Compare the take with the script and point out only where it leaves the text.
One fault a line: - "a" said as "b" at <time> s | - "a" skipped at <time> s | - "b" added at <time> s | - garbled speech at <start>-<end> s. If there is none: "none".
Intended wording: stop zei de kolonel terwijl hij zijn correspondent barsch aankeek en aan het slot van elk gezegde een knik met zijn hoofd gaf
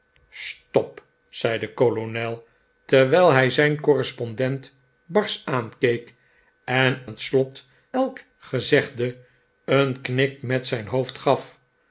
- "aan" skipped at 7.0 s
- "van" skipped at 7.7 s